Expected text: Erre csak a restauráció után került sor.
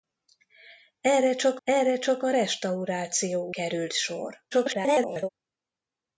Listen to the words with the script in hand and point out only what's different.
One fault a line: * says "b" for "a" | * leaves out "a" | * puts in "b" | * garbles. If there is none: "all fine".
* puts in "erre csak"
* leaves out "után"
* garbles